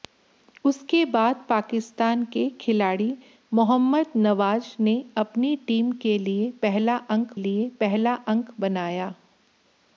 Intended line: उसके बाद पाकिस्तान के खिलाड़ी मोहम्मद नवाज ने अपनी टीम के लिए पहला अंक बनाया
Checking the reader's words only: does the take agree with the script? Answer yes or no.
no